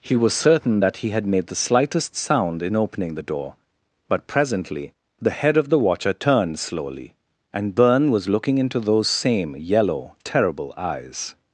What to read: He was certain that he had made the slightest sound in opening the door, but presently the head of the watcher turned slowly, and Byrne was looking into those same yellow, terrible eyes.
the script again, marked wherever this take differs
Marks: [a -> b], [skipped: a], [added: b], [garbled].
He was certain that he had made the slightest sound in opening the door, but presently the head of the watcher turned slowly, and Byrne was looking into those same yellow, terrible eyes.